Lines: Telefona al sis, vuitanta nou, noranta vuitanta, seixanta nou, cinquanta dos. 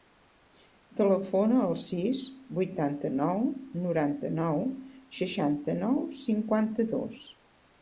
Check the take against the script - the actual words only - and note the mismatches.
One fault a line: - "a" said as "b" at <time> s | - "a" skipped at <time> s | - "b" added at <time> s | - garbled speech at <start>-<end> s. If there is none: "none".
- "vuitanta" said as "nou" at 4.4 s